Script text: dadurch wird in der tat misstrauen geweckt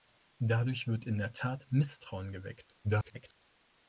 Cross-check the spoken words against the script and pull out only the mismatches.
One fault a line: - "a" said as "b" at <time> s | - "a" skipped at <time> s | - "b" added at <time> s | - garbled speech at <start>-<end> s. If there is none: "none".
- garbled speech at 2.8-3.4 s